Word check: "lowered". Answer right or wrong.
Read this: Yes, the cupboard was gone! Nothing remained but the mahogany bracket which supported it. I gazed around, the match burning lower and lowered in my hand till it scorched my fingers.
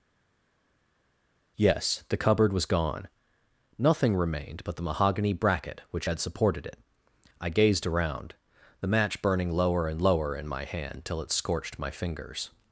wrong